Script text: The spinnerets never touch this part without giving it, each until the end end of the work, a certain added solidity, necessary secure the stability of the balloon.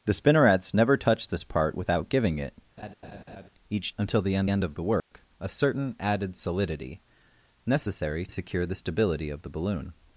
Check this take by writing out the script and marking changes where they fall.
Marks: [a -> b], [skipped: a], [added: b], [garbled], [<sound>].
The spinnerets never touch this part without giving it, [laugh] each until the end end of the work, [dropout] a certain added solidity, necessary secure the stability of the balloon.